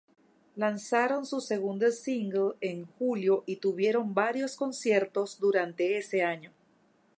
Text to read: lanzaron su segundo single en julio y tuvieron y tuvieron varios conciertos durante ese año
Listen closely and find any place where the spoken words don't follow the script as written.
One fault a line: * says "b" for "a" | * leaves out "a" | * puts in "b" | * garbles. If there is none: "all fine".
* leaves out "y tuvieron"